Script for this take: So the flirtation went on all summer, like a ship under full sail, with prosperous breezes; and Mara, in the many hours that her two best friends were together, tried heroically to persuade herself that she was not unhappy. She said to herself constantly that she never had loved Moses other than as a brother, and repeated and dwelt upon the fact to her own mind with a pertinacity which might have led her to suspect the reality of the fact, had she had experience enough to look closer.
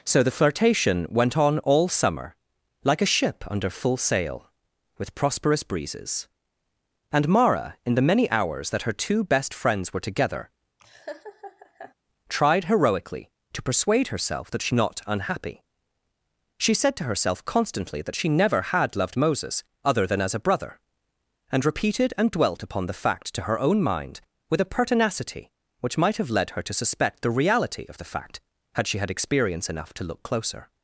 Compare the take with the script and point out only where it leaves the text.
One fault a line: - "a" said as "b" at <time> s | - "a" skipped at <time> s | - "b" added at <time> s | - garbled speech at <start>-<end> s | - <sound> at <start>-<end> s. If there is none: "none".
- laugh at 10.8-11.9 s
- "was" skipped at 14.7 s